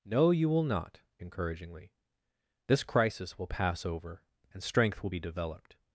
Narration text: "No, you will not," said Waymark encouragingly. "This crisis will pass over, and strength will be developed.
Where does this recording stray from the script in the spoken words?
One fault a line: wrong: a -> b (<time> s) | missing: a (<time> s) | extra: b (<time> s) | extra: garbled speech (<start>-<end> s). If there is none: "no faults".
missing: said Waymark (1.0 s)